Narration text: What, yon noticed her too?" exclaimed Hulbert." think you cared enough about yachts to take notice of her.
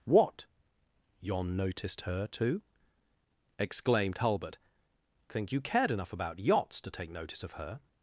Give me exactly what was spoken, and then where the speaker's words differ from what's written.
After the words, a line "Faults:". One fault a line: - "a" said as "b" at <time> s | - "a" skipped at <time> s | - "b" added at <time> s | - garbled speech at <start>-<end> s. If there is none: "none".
What, yon noticed her too?" exclaimed Hulbert." think you cared enough about yachts to take notice of her.
Faults:
none